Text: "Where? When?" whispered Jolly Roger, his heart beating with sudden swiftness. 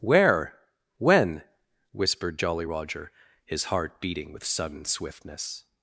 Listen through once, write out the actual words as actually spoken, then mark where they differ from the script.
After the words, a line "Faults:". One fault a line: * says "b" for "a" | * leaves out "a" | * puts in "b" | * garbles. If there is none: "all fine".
"Where? When?" whispered Jolly Roger, his heart beating with sudden swiftness.
Faults:
all fine